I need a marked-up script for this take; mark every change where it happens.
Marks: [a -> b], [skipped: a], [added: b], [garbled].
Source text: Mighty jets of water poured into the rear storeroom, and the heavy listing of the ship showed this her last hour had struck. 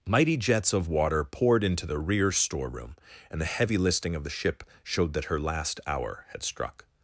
Mighty jets of water poured into the rear storeroom, and the heavy listing of the ship showed [this -> that] her last hour had struck.